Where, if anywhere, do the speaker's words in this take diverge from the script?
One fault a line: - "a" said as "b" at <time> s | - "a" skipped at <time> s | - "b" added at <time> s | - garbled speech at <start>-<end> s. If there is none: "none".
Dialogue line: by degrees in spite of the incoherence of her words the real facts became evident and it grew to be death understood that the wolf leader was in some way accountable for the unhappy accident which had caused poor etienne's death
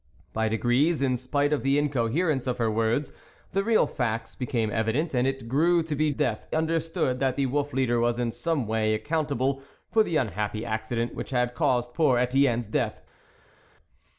none